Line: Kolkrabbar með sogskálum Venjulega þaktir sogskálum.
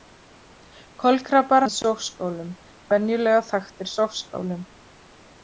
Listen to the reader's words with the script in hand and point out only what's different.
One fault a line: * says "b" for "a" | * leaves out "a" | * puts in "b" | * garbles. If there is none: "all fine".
all fine